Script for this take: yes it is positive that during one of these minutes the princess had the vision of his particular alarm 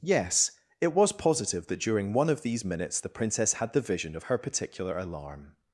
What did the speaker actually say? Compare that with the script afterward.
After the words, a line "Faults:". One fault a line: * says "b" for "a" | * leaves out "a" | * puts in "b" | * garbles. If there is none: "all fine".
yes it was positive that during one of these minutes the princess had the vision of her particular alarm
Faults:
* says "was" for "is"
* says "her" for "his"